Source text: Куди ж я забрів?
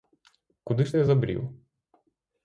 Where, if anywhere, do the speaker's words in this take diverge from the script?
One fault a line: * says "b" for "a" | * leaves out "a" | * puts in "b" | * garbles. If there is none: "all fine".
all fine